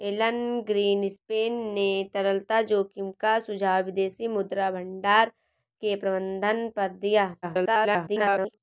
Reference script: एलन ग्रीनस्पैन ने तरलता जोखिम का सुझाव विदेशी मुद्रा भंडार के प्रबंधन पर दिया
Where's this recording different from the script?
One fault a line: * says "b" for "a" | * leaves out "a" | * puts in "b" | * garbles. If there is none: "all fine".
* garbles